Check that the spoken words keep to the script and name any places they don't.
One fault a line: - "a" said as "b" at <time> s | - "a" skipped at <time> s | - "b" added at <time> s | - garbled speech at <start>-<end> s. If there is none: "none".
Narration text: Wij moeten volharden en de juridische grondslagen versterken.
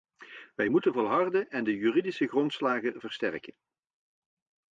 none